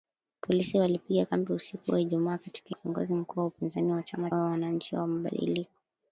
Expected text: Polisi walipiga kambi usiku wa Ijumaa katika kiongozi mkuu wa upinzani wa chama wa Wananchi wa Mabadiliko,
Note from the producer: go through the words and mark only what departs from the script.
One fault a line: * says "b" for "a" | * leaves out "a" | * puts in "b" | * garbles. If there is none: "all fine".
all fine